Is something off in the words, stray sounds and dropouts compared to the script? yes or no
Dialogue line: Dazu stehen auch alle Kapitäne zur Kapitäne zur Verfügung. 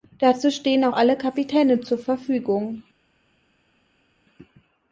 yes